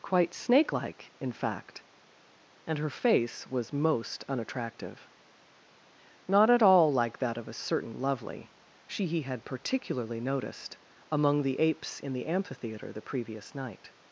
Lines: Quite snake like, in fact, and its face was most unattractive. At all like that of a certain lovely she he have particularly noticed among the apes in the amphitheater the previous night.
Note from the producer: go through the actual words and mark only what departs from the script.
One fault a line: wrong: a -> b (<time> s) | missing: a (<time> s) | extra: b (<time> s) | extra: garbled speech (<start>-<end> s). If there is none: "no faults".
wrong: its -> her (2.8 s)
extra: Not (6.3 s)
wrong: have -> had (9.2 s)